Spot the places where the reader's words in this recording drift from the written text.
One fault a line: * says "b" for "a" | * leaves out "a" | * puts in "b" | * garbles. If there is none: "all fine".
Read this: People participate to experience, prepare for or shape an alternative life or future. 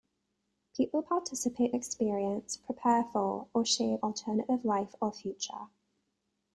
* leaves out "to"
* leaves out "an"